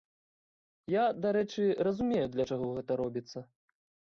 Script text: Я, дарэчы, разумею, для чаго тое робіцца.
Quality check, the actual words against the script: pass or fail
fail